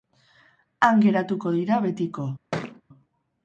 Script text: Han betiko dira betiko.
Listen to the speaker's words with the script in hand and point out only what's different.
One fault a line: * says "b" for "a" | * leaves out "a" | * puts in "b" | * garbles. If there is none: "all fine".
* says "geratuko" for "betiko"